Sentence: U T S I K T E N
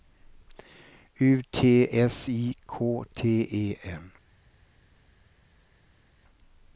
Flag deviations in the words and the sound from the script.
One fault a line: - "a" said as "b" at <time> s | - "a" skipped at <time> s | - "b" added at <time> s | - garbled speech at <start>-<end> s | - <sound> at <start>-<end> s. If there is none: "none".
none